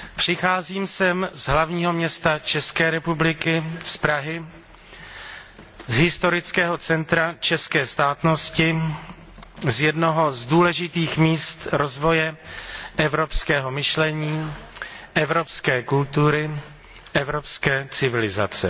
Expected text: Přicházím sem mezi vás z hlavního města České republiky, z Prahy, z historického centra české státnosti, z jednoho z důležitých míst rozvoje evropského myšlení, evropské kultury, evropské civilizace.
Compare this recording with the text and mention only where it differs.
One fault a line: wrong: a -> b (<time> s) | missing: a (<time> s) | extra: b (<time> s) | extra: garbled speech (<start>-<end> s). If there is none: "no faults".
missing: mezi vás (1.3 s)